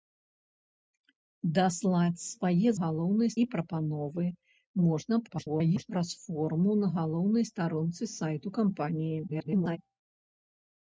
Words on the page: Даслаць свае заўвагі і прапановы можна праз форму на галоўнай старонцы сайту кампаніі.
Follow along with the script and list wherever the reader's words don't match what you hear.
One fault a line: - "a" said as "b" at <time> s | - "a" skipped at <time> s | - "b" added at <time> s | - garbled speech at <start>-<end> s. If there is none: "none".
- "заўвагі" said as "галоўнай" at 2.8 s
- garbled speech at 5.3-5.9 s
- garbled speech at 9.3-9.8 s